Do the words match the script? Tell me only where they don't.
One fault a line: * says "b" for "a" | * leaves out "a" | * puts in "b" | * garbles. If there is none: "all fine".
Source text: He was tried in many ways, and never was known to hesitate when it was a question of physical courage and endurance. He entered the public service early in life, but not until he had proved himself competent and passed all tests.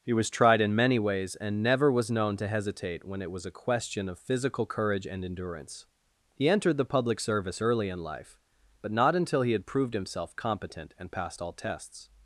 all fine